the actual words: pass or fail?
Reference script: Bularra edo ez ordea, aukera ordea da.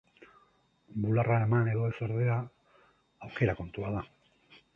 fail